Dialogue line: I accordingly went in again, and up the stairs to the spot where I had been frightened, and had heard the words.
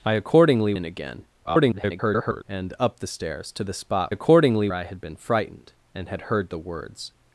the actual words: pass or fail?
fail